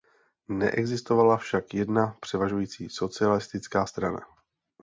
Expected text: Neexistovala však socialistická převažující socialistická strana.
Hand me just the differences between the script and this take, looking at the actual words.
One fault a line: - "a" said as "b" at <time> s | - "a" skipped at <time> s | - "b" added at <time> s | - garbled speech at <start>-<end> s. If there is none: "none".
- "socialistická" said as "jedna" at 1.7 s